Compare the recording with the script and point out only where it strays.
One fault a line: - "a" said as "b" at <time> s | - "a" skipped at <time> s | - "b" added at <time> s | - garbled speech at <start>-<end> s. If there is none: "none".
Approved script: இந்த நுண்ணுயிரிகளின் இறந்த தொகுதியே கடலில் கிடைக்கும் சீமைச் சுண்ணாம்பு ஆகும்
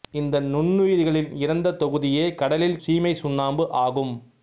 - "கிடைக்கும்" skipped at 2.8 s